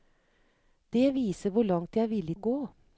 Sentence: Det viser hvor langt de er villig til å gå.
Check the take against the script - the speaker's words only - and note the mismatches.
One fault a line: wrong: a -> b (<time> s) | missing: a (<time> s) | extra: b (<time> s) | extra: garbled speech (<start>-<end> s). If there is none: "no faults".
missing: til (2.4 s)